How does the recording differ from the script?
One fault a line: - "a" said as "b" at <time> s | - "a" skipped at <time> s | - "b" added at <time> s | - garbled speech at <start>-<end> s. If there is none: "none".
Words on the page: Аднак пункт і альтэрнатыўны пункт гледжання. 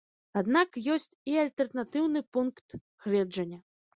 - "пункт" said as "ёсць" at 0.9 s